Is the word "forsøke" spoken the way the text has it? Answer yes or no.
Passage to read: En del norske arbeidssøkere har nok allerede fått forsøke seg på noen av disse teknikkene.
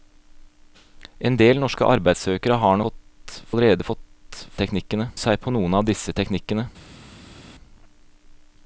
no